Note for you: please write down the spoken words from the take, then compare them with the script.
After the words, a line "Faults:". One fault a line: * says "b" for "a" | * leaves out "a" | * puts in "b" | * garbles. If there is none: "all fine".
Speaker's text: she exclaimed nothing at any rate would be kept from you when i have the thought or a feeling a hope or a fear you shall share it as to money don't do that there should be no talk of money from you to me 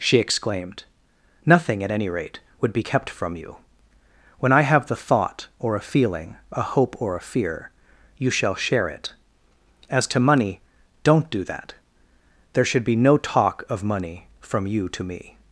she exclaimed nothing at any rate would be kept from you when i have the thought or a feeling a hope or a fear you shall share it as to money don't do that there should be no talk of money from you to me
Faults:
all fine